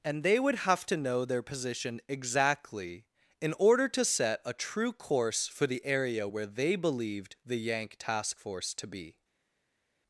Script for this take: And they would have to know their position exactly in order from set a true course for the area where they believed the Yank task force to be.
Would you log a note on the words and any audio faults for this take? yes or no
yes